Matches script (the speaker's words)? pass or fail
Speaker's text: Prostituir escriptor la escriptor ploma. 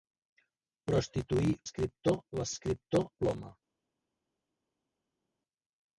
pass